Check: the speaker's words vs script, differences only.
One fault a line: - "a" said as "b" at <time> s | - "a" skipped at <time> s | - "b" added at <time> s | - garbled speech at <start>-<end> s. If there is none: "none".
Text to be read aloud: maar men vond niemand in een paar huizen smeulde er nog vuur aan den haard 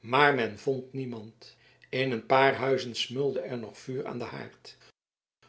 none